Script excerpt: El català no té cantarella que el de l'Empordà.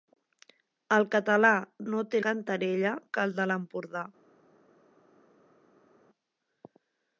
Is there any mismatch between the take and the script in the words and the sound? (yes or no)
no